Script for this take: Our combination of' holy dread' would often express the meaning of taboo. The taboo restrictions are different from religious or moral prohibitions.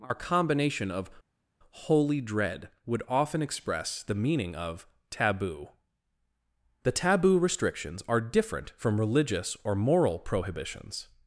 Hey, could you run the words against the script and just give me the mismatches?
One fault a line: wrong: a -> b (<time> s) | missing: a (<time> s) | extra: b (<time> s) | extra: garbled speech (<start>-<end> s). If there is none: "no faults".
no faults